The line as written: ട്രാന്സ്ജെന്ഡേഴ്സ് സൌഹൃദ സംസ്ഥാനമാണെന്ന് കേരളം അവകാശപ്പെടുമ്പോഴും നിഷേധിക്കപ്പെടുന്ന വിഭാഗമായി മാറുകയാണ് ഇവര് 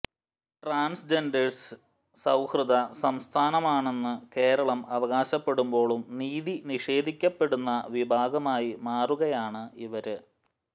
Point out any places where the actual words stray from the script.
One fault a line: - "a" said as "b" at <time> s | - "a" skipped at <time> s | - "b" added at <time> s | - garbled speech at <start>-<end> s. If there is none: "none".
- "നീതി" added at 6.2 s